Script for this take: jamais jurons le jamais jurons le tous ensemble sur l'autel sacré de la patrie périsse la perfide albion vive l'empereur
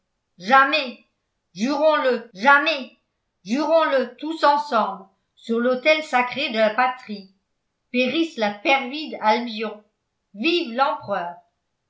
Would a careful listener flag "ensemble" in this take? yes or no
no